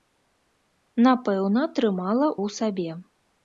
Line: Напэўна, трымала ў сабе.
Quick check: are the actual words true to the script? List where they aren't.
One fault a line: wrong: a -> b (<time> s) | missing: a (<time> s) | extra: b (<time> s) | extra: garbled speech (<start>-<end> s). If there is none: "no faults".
no faults